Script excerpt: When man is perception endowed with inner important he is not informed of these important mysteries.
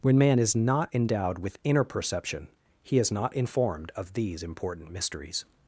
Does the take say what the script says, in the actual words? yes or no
no